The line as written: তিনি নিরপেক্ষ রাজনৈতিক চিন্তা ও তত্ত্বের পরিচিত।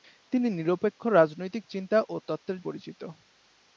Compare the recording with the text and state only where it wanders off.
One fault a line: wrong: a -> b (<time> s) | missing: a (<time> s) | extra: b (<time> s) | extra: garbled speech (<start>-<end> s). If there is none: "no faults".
no faults